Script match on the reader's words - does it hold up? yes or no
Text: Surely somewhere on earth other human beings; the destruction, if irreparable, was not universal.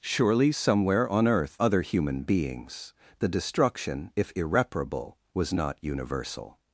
yes